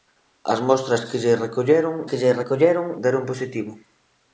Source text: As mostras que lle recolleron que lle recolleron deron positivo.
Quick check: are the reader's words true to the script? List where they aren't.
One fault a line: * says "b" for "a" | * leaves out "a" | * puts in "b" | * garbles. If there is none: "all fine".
all fine